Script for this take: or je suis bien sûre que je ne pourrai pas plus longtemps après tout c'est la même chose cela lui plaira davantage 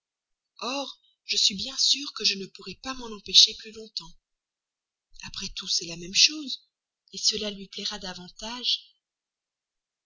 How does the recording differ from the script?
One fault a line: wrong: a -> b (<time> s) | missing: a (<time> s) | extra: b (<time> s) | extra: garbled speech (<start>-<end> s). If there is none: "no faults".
extra: m'en empêcher (3.0 s)